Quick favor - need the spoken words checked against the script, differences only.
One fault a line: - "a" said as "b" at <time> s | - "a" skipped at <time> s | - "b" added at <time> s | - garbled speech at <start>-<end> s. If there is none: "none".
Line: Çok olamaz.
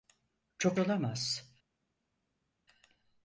none